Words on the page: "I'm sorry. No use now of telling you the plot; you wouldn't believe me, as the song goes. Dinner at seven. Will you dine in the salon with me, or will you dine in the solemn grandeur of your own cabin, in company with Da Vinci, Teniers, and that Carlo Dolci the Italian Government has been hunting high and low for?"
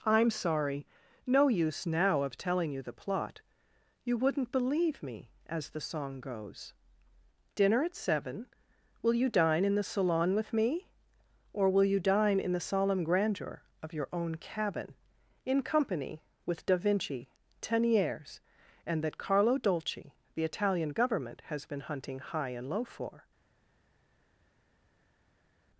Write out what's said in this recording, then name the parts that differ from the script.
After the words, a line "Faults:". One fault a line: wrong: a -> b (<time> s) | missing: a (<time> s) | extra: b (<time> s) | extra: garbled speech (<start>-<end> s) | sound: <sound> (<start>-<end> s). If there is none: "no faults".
"I'm sorry. No use now of telling you the plot; you wouldn't believe me, as the song goes. Dinner at seven. Will you dine in the salon with me, or will you dine in the solemn grandeur of your own cabin, in company with Da Vinci, Teniers, and that Carlo Dolci the Italian Government has been hunting high and low for?"
Faults:
no faults